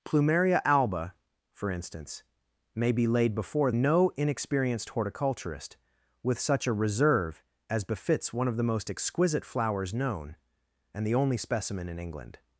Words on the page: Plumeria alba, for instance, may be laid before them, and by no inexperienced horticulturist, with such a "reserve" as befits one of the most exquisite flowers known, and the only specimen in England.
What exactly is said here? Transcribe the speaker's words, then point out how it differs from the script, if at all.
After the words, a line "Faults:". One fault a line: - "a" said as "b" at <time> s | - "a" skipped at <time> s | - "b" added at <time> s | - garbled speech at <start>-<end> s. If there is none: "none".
Plumeria alba, for instance, may be laid before no inexperienced horticulturist, with such a "reserve" as befits one of the most exquisite flowers known, and the only specimen in England.
Faults:
- "them and by" skipped at 3.7 s